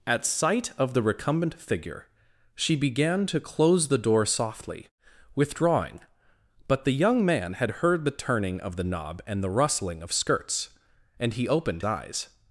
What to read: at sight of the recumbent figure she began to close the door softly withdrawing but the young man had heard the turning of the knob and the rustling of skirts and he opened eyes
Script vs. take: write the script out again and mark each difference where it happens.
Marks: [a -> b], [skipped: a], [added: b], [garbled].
at sight of the recumbent figure she began to close the door softly withdrawing but the young man had heard the turning of the knob and the rustling of skirts and he opened eyes